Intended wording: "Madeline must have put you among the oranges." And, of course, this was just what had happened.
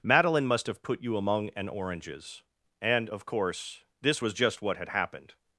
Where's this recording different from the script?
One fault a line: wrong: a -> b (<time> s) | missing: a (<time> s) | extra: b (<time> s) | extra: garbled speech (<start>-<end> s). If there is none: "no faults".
wrong: the -> an (1.5 s)